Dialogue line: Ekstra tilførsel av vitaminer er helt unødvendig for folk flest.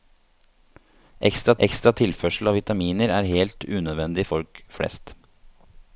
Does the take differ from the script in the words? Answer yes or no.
yes